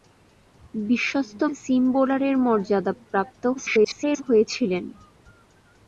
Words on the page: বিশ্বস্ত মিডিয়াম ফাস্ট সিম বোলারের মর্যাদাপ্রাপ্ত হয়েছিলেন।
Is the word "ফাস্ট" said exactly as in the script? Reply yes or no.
no